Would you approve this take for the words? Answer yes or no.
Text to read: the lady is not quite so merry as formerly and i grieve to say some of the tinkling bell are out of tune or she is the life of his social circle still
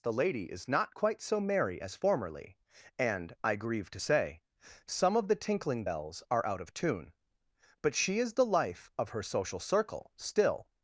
no